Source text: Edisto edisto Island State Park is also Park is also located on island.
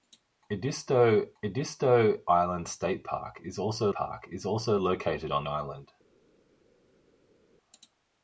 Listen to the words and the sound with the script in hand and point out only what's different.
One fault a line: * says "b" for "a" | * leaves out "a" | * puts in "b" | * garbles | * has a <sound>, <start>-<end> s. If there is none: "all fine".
all fine